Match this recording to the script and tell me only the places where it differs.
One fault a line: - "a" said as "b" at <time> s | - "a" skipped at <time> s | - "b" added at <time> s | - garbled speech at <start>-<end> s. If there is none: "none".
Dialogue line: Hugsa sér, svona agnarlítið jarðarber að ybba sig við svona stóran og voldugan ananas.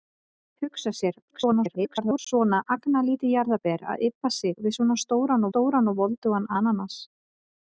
- garbled speech at 1.3-2.2 s
- "stóran" added at 5.5 s